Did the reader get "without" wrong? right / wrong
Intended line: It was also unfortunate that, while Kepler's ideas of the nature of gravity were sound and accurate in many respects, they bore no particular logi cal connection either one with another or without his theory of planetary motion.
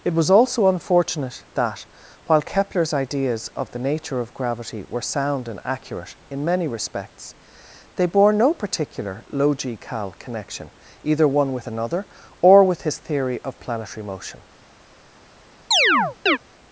wrong